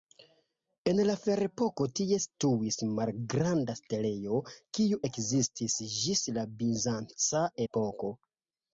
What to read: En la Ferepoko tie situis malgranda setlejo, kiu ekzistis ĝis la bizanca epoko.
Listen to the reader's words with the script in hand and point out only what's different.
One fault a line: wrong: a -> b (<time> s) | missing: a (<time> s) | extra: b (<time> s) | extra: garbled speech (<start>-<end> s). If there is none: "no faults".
no faults